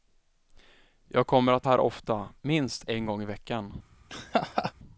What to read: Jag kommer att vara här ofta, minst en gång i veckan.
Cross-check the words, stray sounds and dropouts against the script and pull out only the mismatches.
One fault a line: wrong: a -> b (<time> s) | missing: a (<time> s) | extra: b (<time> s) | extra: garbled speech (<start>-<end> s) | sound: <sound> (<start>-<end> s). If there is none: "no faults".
missing: vara (1.7 s)
sound: laugh (4.1-4.7 s)